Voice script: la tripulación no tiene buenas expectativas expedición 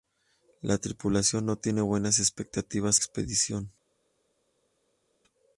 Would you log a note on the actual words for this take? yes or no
no